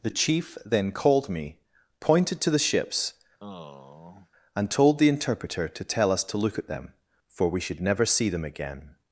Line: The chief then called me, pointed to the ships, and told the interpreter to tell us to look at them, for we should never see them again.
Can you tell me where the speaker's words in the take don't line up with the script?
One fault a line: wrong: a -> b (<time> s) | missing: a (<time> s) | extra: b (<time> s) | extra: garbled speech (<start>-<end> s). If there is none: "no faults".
no faults